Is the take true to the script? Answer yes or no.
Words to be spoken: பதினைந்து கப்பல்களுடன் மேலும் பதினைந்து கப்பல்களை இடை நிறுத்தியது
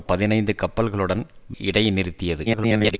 no